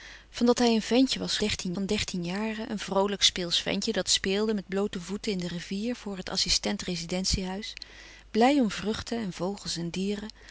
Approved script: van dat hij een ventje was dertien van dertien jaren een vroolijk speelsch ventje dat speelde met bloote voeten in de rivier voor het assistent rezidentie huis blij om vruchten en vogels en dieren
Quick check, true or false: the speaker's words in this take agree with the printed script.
true